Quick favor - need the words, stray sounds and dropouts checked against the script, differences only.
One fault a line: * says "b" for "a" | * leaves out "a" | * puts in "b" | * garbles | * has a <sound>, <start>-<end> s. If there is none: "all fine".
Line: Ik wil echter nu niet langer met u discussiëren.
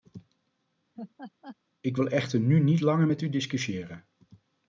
* has a laugh, 0.9-1.6 s